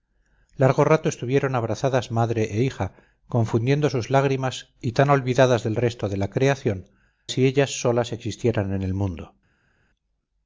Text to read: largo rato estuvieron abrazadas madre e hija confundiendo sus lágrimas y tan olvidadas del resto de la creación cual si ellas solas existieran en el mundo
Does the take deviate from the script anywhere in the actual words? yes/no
yes